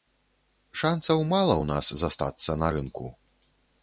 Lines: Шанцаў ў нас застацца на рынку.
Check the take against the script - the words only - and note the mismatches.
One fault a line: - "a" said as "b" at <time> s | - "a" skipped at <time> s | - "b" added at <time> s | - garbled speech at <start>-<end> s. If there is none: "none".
- "мала" added at 1.3 s